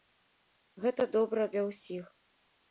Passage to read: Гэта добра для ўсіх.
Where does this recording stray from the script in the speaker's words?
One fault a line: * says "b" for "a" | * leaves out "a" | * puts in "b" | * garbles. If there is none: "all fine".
all fine